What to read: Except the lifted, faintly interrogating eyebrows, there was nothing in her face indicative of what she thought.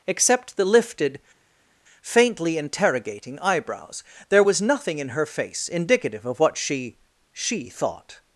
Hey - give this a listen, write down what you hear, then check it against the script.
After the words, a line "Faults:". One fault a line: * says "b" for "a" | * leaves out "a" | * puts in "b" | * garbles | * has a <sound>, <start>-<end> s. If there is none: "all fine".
Except the lifted, faintly interrogating eyebrows, there was nothing in her face indicative of what she she thought.
Faults:
* puts in "she"